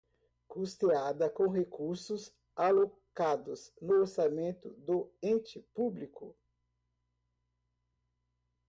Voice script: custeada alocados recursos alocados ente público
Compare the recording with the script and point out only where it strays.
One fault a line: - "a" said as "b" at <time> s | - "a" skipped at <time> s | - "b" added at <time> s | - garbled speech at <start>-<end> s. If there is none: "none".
- "alocados" said as "com" at 1.3 s
- "no orçamento do" added at 3.8 s